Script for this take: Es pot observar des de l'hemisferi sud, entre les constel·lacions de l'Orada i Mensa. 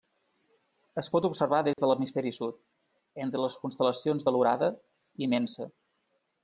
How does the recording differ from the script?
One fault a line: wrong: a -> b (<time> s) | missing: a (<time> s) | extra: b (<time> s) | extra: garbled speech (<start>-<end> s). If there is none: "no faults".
no faults